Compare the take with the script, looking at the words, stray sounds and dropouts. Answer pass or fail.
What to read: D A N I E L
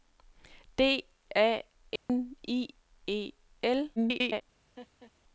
fail